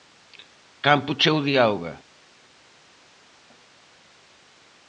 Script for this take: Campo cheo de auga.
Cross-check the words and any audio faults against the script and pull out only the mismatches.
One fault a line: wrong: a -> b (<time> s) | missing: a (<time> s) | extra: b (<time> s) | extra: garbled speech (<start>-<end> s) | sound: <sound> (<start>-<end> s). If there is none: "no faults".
no faults